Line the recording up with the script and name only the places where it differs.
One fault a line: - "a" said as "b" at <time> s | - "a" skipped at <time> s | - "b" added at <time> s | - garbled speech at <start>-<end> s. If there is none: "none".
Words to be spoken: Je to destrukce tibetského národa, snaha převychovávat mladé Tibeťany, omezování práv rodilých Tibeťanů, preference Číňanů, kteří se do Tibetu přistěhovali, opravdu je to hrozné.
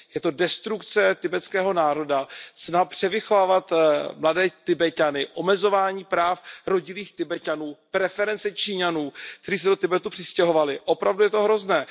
none